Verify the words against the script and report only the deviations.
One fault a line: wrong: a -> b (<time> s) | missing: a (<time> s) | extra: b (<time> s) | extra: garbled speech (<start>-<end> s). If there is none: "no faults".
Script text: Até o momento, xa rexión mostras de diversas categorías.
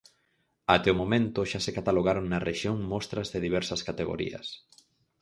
extra: se catalogaron na (1.6 s)